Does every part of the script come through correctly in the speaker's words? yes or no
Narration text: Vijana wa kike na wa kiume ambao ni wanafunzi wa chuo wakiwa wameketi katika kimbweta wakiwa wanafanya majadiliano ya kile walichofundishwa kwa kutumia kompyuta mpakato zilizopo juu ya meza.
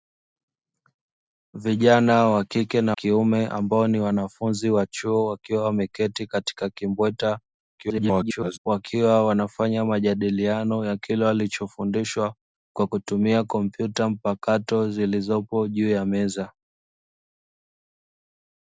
no